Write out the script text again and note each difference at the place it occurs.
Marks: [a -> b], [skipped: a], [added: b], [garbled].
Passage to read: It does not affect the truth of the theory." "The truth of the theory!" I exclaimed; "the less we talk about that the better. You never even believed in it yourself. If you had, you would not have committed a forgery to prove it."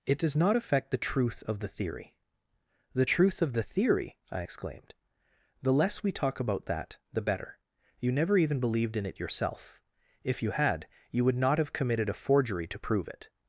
It does not affect the truth of the theory." "The truth of the theory!" I exclaimed; "the less we talk about that the better. You never even believed in it yourself. If you had, you would not have committed a forgery to prove it."